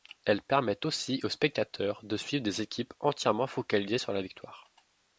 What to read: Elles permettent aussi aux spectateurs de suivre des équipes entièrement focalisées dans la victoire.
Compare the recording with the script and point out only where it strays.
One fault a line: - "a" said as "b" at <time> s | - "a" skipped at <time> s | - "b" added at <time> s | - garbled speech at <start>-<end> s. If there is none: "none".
- "dans" said as "sur" at 4.0 s